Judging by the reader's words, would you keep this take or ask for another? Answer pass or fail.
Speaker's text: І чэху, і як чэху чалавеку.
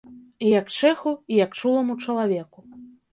fail